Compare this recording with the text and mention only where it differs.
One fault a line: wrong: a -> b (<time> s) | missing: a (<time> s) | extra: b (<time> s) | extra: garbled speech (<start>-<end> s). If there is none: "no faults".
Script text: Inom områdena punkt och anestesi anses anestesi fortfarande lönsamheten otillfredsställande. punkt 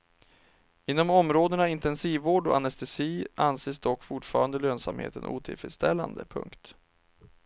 wrong: punkt -> intensivvård (1.7 s)
wrong: anestesi -> dock (3.8 s)